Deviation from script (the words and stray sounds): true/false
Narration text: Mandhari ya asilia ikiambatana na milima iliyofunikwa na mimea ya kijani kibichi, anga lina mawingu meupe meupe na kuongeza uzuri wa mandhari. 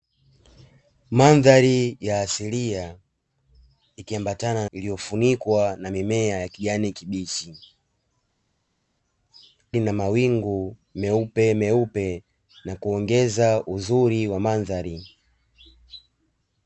true